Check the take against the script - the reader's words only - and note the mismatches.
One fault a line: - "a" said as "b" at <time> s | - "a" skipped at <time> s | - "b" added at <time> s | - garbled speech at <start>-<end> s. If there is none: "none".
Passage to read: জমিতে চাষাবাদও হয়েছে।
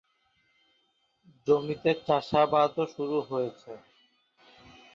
- "শুরু" added at 2.9 s